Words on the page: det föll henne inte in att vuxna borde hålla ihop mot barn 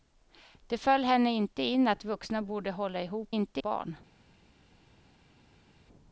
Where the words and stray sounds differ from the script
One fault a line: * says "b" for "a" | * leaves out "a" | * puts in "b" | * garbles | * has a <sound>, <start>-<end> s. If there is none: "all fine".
* says "inte" for "mot"